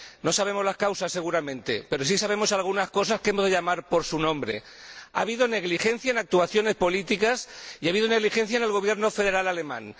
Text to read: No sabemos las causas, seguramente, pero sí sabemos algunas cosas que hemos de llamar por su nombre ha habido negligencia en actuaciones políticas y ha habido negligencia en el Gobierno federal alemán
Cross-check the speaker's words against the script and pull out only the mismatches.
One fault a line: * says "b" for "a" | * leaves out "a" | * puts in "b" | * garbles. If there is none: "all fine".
all fine